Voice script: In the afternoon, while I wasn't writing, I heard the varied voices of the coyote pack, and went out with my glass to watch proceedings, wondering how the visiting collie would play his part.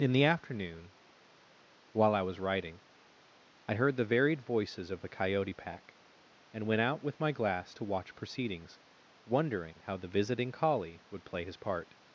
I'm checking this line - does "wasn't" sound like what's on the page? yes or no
no